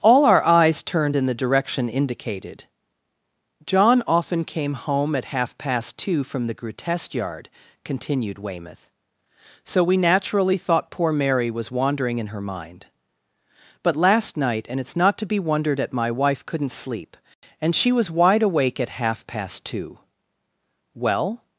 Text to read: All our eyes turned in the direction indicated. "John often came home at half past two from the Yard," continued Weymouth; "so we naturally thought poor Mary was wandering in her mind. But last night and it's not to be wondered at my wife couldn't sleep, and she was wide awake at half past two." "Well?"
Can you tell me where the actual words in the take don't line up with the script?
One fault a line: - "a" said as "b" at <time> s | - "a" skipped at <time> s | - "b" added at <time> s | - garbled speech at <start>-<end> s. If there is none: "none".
- "grotesque" added at 6.5 s